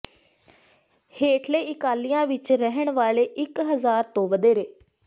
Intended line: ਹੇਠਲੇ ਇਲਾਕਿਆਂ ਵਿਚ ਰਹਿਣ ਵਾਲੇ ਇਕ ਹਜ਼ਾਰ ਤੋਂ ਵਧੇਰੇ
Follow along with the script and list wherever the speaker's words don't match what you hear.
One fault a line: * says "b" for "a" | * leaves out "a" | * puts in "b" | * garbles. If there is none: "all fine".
all fine